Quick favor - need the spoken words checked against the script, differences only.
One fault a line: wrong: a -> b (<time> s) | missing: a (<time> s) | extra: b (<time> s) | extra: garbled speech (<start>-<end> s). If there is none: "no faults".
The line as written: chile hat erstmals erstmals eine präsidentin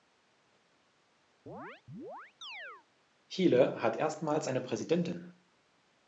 missing: erstmals (4.5 s)